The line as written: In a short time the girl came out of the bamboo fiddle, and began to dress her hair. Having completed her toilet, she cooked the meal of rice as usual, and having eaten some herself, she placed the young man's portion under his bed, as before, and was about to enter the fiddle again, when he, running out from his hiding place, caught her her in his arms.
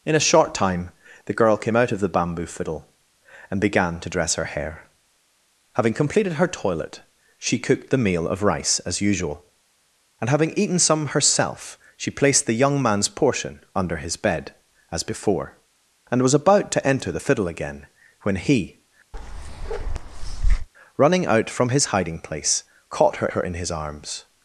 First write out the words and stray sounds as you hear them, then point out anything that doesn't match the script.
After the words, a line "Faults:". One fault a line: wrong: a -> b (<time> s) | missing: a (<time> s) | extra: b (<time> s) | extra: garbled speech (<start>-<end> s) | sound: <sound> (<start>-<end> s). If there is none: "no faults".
In a short time the girl came out of the bamboo fiddle, and began to dress her hair. Having completed her toilet, she cooked the meal of rice as usual, and having eaten some herself, she placed the young man's portion under his bed, as before, and was about to enter the fiddle again, when he, running out from his hiding place, caught her her in his arms.
Faults:
sound: bark (19.1-20.7 s)